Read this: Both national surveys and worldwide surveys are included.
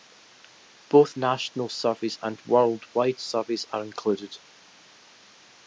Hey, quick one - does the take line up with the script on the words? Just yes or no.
yes